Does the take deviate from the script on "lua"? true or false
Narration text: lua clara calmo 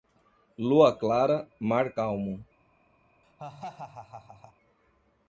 false